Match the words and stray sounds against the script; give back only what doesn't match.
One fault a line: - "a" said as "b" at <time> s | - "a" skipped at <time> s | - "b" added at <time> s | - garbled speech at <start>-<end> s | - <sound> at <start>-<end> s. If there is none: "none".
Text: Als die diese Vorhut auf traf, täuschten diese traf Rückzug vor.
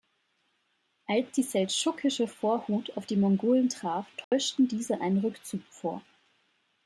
- "diese" said as "seldschukische" at 1.4 s
- "die Mongolen" added at 3.0 s
- dropout at 4.2-4.3 s
- "traf" said as "einen" at 5.0 s